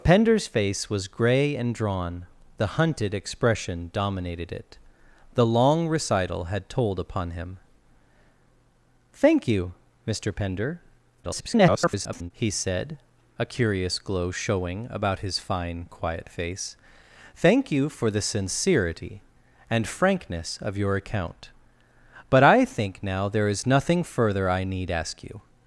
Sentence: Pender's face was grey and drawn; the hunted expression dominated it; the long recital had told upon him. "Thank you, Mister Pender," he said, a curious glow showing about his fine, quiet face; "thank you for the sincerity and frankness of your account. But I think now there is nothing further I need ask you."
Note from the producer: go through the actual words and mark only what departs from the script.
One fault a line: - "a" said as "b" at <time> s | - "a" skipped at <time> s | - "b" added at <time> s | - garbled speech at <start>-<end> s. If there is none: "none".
- garbled speech at 11.2-12.3 s